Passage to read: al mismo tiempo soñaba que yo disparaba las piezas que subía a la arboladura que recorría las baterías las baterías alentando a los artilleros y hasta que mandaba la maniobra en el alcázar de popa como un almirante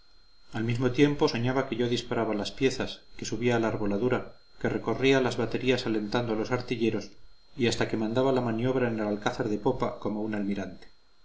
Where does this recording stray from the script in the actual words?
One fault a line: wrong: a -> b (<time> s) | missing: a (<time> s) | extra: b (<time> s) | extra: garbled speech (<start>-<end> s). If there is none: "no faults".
missing: las baterías (5.9 s)